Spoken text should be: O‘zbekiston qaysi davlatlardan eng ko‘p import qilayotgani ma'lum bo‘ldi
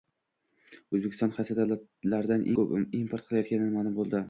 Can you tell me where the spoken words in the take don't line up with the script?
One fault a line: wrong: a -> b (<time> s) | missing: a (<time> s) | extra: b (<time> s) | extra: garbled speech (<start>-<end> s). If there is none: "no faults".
missing: eng (2.5 s)